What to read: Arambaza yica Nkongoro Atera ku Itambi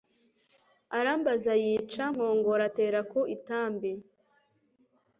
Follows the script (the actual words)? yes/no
yes